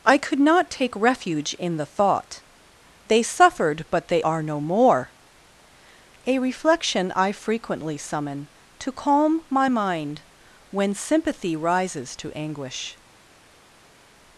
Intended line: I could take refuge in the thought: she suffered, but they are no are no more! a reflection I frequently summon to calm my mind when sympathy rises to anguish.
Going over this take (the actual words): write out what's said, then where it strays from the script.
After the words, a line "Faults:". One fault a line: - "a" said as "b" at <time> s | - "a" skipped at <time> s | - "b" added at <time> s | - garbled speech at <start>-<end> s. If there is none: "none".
I could not take refuge in the thought: they suffered, but they are no more! a reflection I frequently summon to calm my mind when sympathy rises to anguish.
Faults:
- "not" added at 0.4 s
- "she" said as "they" at 3.1 s
- "are no" skipped at 4.6 s